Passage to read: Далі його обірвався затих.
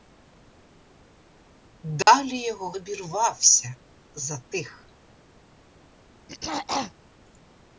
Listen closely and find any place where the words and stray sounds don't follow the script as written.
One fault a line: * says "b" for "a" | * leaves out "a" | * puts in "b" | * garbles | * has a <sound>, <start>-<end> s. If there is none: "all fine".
* has a dropout, 2.0-2.1 s
* has a throat clearing, 6.3-6.9 s